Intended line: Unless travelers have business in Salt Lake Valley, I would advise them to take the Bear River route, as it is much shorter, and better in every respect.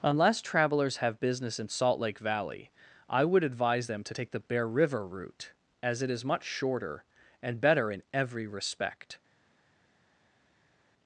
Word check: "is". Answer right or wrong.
right